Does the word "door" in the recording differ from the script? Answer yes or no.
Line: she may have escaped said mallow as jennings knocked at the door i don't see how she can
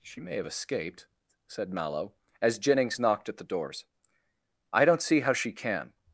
yes